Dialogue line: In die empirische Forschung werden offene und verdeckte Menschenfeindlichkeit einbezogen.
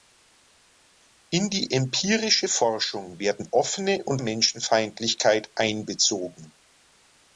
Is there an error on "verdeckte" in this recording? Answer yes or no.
yes